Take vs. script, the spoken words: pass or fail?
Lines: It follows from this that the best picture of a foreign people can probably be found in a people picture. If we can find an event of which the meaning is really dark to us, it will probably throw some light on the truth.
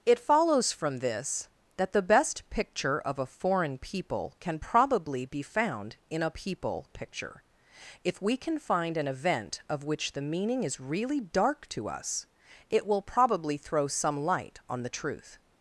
pass